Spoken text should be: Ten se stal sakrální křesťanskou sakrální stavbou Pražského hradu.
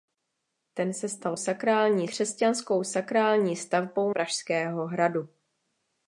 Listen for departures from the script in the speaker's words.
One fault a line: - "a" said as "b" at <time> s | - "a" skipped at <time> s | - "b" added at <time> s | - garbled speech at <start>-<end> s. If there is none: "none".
none